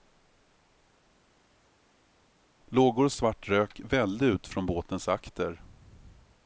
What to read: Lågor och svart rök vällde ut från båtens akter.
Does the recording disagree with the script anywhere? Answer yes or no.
no